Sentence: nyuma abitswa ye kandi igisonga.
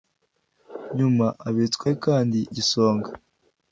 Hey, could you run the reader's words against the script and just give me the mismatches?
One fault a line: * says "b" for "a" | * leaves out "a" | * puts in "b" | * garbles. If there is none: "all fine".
all fine